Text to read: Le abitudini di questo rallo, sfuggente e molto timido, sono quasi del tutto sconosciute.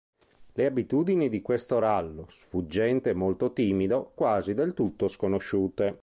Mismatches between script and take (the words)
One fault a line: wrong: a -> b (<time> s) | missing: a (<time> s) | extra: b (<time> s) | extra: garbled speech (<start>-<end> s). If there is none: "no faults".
missing: sono (4.1 s)